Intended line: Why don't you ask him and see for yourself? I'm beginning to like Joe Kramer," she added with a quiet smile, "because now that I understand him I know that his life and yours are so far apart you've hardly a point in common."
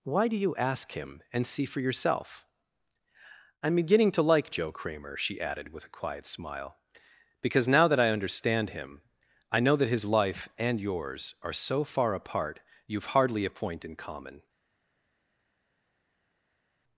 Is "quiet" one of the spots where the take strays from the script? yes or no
no